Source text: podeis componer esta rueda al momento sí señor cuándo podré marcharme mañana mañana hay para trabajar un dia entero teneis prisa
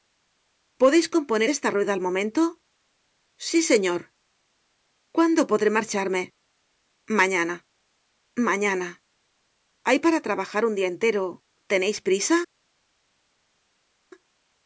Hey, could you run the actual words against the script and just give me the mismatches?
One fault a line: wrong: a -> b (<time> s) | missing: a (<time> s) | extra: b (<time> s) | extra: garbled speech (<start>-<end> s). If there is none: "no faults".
no faults